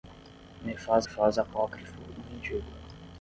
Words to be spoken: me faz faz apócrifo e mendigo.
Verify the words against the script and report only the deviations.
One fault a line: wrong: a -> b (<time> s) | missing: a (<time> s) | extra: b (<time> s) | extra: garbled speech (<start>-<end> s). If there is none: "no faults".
no faults